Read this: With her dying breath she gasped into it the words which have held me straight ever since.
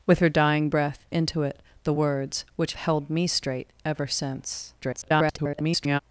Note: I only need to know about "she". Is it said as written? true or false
false